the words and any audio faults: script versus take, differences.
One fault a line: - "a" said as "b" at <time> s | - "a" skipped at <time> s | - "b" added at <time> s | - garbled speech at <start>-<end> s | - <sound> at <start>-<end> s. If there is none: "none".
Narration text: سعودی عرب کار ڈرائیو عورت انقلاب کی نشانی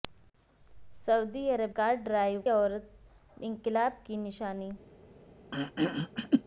- throat clearing at 5.5-6.4 s